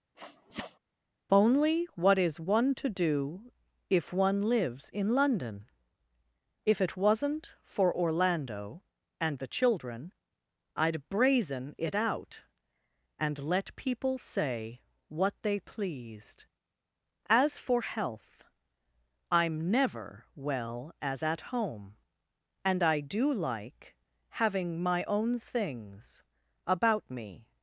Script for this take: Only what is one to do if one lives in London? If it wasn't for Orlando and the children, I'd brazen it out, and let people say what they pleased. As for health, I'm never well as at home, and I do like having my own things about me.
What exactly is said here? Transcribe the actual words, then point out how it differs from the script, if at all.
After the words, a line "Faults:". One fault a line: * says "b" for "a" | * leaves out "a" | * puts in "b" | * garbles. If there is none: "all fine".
Only what is one to do if one lives in London? If it wasn't for Orlando and the children, I'd brazen it out, and let people say what they pleased. As for health, I'm never well as at home, and I do like having my own things about me.
Faults:
all fine